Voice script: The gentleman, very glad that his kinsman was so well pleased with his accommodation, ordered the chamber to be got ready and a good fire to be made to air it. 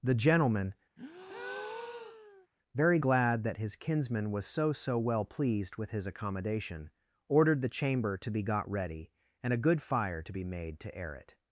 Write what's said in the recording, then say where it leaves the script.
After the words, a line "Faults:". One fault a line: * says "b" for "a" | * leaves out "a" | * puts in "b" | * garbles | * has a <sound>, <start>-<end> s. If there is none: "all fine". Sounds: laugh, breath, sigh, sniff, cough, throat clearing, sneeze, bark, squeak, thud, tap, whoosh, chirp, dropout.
The gentleman, very glad that his kinsman was so so well pleased with his accommodation, ordered the chamber to be got ready and a good fire to be made to air it.
Faults:
* has a breath, 1.0-2.5 s
* puts in "so"